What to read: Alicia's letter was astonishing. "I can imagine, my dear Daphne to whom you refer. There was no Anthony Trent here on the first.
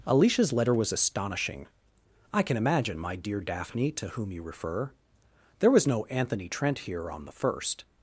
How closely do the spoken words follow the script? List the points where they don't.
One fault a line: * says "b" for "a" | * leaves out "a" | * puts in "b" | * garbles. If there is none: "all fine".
all fine